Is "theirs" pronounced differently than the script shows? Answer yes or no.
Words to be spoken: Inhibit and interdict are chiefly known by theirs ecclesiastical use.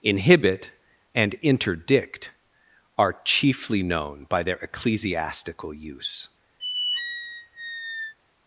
yes